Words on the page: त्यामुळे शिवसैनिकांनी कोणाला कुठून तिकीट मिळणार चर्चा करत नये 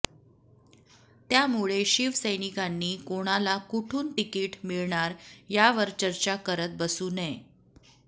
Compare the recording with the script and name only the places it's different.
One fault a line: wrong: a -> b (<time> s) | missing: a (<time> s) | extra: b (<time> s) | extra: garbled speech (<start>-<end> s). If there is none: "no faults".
extra: यावर (5.5 s)
extra: बसू (6.8 s)